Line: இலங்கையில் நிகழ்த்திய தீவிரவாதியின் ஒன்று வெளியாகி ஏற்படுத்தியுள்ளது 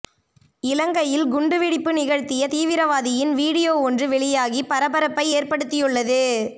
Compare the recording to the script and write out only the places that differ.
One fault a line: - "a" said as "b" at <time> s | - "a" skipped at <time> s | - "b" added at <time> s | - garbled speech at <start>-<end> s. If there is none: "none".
- "குண்டுவெடிப்பு" added at 1.2 s
- "வீடியோ" added at 3.3 s
- "பரபரப்பை" added at 4.6 s